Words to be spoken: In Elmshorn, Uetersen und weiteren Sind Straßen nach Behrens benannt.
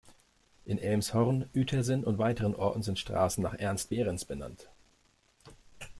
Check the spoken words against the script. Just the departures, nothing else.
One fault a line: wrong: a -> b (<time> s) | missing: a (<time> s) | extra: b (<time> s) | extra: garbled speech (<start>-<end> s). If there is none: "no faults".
extra: Orten (2.5 s)
extra: ernst (3.6 s)